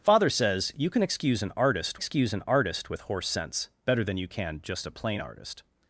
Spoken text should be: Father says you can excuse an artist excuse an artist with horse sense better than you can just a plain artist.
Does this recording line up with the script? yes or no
yes